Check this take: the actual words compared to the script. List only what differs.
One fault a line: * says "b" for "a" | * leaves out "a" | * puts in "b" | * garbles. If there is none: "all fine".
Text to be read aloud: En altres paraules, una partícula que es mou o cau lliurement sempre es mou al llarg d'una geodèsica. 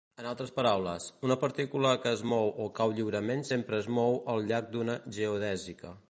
all fine